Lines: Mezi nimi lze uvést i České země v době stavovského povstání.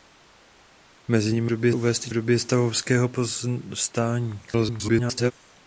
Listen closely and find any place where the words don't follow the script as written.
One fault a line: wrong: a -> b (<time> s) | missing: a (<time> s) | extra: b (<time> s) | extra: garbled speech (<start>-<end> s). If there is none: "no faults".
wrong: lze -> době (1.5 s)
missing: České země (2.1 s)
extra: garbled speech (4.5-5.3 s)